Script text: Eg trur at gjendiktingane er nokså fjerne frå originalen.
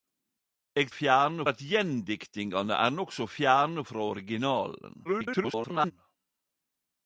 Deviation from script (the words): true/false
true